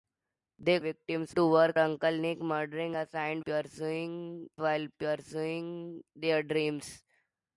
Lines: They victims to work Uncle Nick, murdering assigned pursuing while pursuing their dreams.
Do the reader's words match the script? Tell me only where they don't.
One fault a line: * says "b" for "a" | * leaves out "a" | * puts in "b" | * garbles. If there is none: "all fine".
all fine